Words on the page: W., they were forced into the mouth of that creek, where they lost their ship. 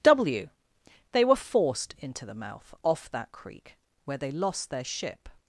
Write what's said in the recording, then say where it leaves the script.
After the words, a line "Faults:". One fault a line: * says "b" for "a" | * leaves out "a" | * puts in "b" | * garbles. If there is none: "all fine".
W., they were forced into the mouth off that creek, where they lost their ship.
Faults:
* says "off" for "of"